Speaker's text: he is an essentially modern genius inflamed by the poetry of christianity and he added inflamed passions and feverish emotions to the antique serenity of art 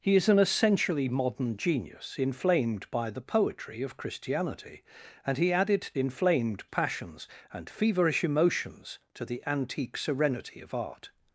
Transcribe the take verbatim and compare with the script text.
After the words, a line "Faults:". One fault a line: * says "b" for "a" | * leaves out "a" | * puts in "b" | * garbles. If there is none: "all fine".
he is an essentially modern genius inflamed by the poetry of christianity and he added inflamed passions and feverish emotions to the antique serenity of art
Faults:
all fine